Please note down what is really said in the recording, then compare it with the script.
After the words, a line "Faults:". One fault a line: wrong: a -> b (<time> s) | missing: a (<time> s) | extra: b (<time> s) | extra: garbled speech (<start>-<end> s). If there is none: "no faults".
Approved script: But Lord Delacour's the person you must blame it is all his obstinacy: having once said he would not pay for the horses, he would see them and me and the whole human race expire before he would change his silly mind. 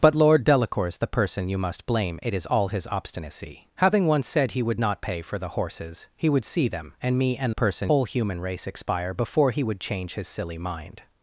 But Lord Delacour's the person you must blame it is all his obstinacy: having once said he would not pay for the horses, he would see them and me and person whole human race expire before he would change his silly mind.
Faults:
wrong: the -> person (7.5 s)